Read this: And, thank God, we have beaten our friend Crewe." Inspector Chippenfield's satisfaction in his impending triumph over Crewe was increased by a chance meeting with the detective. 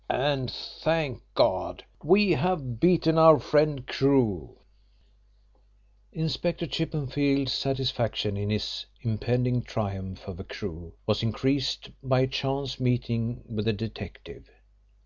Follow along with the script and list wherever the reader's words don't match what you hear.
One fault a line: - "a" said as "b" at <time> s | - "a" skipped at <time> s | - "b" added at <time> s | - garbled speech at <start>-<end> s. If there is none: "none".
none